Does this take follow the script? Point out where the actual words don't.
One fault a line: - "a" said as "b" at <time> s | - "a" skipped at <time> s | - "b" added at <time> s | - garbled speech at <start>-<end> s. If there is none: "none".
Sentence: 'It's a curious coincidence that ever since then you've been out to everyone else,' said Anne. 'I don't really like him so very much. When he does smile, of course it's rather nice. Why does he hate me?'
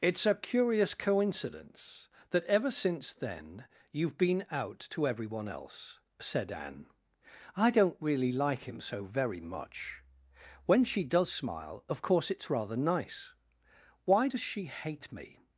- "he" said as "she" at 10.8 s
- "he" said as "she" at 14.4 s